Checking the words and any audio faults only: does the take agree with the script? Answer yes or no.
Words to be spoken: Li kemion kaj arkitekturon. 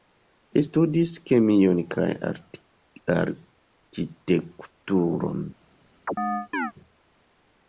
no